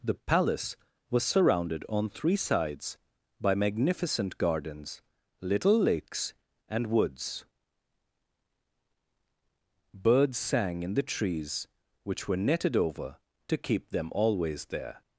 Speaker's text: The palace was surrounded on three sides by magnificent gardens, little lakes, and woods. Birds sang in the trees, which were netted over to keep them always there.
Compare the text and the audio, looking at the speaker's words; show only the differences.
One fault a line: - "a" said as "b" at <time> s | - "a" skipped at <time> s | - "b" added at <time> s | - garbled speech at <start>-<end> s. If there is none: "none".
none